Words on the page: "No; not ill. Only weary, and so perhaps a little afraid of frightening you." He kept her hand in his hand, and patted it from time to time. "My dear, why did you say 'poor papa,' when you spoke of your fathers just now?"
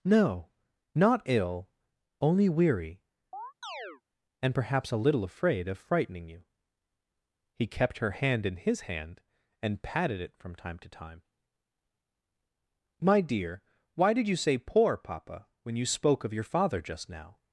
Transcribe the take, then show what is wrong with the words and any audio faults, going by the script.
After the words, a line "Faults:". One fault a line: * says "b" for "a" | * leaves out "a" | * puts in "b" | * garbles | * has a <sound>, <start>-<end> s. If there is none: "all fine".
"No; not ill. Only weary, and perhaps a little afraid of frightening you." He kept her hand in his hand, and patted it from time to time. "My dear, why did you say 'poor papa,' when you spoke of your father just now?"
Faults:
* has a chirp, 3.3-4.0 s
* leaves out "so"
* says "father" for "fathers"